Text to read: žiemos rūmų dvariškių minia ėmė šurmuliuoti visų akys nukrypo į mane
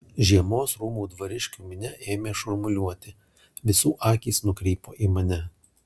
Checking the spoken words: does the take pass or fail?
pass